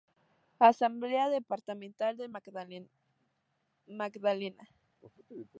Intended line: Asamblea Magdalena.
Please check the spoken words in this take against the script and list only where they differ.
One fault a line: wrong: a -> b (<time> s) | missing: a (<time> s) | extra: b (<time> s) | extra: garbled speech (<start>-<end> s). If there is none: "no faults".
extra: Departamental del (1.3 s)